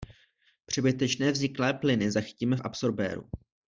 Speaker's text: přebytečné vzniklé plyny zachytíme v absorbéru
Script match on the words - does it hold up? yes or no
yes